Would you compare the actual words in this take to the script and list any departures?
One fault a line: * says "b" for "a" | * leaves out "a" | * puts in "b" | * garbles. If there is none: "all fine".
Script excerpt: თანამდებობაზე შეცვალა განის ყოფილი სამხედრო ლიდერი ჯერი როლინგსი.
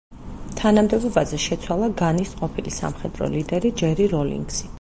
all fine